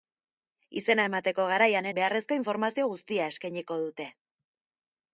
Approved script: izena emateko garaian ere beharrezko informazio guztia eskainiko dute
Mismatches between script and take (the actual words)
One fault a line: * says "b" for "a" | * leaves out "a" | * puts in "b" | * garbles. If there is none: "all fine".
* leaves out "ere"